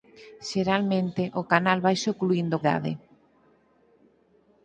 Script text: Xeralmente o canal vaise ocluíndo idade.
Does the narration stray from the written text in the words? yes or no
no